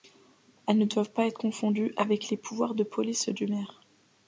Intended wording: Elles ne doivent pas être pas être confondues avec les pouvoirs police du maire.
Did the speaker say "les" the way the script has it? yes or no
yes